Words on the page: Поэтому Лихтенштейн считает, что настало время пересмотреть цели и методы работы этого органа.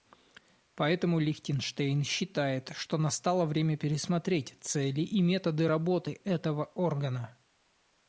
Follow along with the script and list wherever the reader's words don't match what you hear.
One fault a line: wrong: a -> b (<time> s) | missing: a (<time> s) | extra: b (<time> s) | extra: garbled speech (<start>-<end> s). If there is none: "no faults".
no faults